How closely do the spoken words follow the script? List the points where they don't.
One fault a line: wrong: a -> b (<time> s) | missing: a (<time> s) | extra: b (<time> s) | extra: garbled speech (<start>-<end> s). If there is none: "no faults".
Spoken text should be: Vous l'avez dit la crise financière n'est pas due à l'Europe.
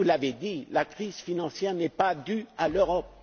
no faults